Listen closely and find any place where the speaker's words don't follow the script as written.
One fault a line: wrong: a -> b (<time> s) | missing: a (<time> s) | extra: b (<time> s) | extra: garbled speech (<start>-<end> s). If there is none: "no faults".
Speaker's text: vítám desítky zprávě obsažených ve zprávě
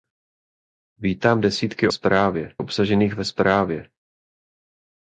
no faults